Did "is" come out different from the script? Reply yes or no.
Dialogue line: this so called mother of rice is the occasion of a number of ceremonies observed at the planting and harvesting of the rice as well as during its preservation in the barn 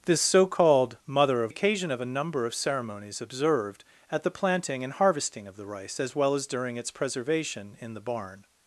yes